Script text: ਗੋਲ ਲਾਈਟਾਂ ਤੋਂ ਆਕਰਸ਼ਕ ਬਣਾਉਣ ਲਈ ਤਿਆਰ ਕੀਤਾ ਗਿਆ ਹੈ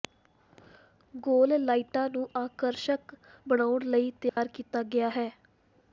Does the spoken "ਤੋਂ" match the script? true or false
false